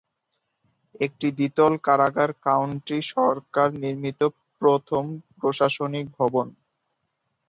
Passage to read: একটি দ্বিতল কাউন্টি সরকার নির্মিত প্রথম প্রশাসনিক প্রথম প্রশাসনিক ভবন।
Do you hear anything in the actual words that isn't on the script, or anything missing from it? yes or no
yes